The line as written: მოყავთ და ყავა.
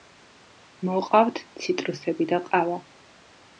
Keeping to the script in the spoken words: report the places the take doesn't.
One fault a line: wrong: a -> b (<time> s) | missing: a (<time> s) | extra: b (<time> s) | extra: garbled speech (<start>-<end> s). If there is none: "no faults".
extra: ციტრუსები (1.6 s)